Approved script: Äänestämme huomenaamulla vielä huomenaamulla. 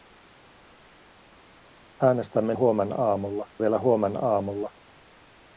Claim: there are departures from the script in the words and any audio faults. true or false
false